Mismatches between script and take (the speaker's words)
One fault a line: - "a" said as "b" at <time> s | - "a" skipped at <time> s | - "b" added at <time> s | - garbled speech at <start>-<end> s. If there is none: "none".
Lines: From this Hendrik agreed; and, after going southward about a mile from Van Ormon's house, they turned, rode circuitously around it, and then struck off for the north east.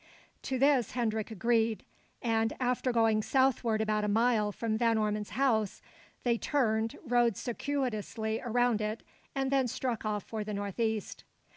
- "From" said as "To" at 0.4 s